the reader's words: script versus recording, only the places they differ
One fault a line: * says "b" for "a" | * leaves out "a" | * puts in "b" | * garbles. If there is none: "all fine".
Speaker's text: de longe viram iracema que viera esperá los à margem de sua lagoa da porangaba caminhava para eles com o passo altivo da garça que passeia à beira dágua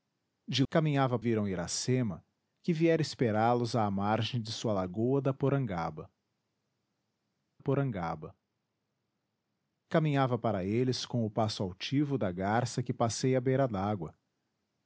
* says "caminhava" for "longe"
* puts in "porangaba"